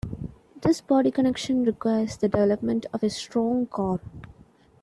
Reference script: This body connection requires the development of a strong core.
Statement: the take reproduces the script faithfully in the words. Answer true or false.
true